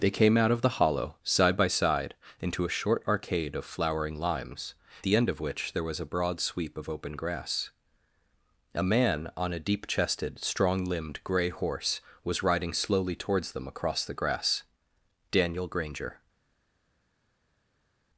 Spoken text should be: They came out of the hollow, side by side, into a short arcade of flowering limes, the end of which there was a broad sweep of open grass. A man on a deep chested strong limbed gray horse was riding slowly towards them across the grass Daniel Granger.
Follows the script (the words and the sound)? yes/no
yes